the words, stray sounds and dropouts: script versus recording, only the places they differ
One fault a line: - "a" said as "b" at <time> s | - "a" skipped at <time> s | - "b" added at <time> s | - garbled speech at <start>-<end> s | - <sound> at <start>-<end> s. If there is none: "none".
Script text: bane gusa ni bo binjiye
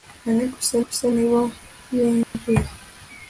- "gusa" added at 0.8 s
- dropout at 2.2-2.3 s